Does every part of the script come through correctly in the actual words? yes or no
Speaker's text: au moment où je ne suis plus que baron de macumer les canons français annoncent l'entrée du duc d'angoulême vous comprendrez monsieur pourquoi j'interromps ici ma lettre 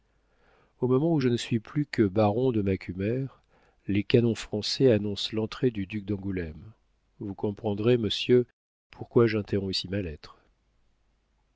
yes